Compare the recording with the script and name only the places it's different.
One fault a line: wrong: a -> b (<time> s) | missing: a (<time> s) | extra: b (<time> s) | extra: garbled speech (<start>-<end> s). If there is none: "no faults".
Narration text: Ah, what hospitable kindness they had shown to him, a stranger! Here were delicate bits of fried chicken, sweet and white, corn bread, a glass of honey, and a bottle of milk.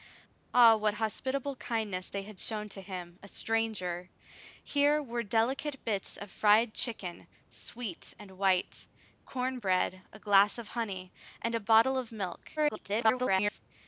extra: garbled speech (12.6-13.6 s)